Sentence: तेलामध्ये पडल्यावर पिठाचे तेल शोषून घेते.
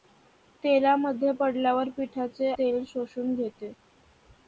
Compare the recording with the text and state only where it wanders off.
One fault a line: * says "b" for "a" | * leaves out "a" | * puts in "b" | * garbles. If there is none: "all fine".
all fine